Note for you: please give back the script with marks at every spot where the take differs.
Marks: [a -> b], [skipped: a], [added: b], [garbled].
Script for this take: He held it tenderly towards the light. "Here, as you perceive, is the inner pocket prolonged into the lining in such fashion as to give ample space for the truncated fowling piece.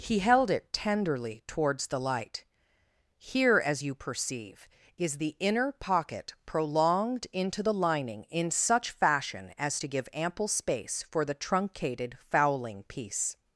He held it tenderly towards the light. "Here, as you perceive, is the inner pocket prolonged into the lining in such fashion as to give ample space for the truncated fowling piece.